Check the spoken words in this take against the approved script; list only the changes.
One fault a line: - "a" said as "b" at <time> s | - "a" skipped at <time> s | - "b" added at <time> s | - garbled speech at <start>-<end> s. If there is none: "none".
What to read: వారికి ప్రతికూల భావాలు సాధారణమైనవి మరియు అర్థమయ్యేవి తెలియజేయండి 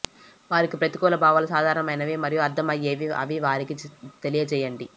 - "అని వారికి" added at 3.2 s